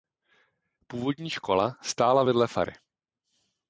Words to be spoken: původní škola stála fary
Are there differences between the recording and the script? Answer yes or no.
yes